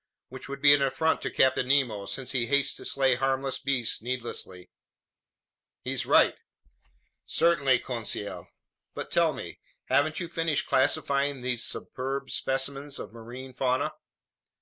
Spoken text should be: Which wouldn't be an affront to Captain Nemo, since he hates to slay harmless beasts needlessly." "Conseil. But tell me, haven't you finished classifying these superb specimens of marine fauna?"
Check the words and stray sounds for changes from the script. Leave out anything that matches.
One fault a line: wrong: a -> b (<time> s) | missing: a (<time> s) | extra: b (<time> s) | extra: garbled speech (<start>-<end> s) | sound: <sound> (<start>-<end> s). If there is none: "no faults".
wrong: wouldn't -> would (0.5 s)
extra: He's right Certainly (5.8 s)